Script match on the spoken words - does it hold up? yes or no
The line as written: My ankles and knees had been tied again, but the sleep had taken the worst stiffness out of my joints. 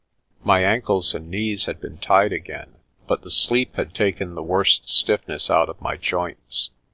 yes